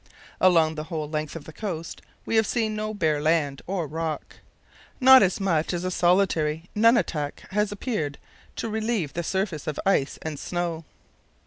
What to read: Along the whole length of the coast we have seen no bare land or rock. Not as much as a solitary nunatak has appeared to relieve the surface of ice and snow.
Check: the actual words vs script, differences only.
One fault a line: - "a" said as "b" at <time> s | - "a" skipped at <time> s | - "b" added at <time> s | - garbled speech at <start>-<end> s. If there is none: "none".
none